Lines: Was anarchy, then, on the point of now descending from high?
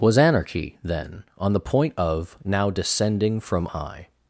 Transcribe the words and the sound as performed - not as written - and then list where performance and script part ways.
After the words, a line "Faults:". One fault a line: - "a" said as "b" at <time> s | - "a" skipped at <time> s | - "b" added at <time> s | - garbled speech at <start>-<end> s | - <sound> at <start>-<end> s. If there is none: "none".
Was anarchy, then, on the point of now descending from high?
Faults:
none